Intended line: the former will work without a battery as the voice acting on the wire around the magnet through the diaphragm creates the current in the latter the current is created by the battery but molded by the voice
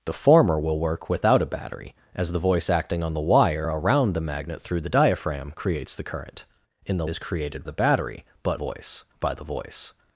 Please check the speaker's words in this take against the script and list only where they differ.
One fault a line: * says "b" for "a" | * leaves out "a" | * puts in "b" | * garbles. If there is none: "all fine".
* leaves out "latter the current"
* leaves out "by"
* says "voice" for "molded"